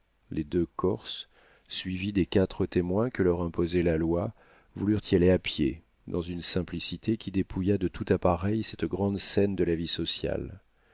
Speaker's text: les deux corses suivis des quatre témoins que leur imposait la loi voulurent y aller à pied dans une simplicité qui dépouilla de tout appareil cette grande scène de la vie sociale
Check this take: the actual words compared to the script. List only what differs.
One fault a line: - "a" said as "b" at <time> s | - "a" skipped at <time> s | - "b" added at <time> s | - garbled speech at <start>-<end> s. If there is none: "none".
none